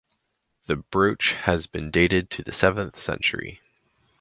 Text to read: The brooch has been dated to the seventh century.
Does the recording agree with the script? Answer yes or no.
yes